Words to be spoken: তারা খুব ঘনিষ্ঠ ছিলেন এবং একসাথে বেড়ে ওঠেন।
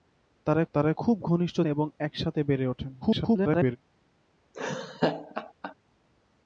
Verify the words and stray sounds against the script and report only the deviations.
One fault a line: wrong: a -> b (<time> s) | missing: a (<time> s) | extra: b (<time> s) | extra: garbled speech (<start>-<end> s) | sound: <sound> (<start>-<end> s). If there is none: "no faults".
extra: তারা (0.7 s)
missing: ছিলেন (1.6 s)
extra: garbled speech (3.0-3.8 s)
sound: laugh (4.5-5.7 s)